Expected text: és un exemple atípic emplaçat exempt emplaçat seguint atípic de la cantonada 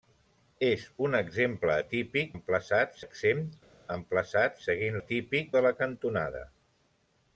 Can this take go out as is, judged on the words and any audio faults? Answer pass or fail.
pass